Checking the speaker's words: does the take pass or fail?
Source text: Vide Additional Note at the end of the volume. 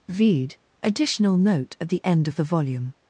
pass